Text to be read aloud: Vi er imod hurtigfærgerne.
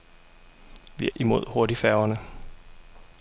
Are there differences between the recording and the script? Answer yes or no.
no